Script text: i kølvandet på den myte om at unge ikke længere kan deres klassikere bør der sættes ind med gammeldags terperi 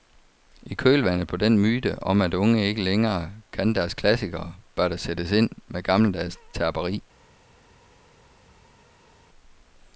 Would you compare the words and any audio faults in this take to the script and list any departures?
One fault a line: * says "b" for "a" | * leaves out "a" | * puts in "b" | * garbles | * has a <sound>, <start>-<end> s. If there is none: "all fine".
all fine